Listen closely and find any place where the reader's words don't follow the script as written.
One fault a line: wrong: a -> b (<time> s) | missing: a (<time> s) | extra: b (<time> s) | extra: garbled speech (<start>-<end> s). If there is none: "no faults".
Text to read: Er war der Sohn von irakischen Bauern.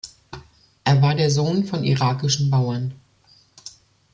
no faults